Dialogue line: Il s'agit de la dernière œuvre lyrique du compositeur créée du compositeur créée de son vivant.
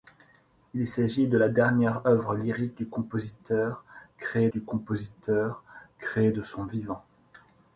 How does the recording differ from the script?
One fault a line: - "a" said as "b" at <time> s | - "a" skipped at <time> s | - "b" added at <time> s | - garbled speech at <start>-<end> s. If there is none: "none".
none